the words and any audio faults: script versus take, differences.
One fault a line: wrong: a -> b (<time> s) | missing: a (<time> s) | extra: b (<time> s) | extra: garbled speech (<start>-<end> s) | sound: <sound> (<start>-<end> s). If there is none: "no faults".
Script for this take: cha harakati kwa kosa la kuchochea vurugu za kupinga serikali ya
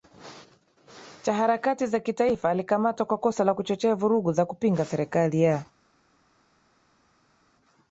extra: za kitaifa alikamatwa (1.9 s)